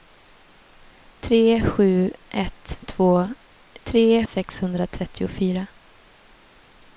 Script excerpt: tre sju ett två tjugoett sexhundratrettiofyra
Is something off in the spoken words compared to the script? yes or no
yes